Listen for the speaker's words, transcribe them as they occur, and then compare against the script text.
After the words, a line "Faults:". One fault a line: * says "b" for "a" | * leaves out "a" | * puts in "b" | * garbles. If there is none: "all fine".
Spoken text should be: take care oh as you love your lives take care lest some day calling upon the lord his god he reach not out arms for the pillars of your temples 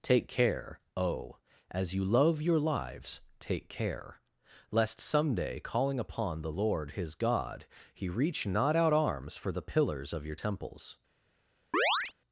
take care oh as you love your lives take care lest some day calling upon the lord his god he reach not out arms for the pillars of your temples
Faults:
all fine